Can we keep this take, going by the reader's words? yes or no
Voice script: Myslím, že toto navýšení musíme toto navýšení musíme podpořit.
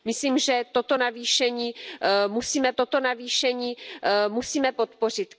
yes